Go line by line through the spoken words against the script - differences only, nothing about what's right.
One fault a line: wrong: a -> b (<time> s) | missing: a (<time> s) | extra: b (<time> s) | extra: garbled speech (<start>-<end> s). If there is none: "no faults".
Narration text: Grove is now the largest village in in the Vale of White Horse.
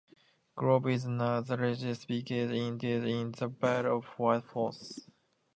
no faults